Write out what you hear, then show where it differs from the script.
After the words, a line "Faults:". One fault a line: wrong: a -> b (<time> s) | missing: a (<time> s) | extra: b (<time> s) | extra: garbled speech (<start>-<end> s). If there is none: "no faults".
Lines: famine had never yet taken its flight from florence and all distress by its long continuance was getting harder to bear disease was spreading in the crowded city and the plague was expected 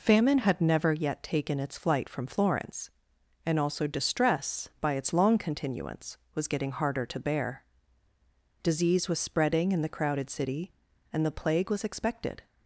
famine had never yet taken its flight from florence and also distress by its long continuance was getting harder to bear disease was spreading in the crowded city and the plague was expected
Faults:
wrong: all -> also (3.6 s)